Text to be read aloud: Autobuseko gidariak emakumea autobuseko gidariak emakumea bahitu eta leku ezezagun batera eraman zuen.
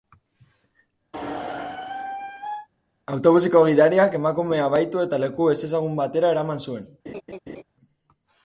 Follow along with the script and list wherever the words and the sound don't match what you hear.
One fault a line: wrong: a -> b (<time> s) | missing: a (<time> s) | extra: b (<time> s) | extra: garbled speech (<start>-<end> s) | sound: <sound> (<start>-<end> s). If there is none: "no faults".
sound: squeak (1.1-2.7 s)
missing: autobuseko gidariak emakumea (4.7 s)
sound: laugh (7.1-7.6 s)